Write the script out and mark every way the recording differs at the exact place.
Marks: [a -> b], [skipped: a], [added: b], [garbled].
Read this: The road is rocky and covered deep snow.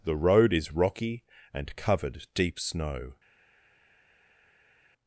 The road is rocky and covered deep snow.